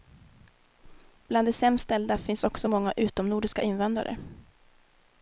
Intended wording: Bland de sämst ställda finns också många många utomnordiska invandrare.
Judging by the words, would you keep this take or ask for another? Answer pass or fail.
fail